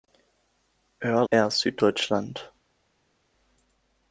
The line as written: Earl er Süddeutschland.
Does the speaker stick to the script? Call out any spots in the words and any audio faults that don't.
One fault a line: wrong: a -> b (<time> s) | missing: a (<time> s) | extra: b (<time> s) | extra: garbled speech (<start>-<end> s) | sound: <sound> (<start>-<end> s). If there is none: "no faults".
no faults